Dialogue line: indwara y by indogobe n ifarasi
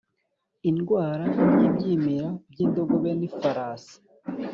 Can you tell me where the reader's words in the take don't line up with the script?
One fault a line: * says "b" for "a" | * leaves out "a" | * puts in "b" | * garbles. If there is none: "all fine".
* puts in "ibyimira"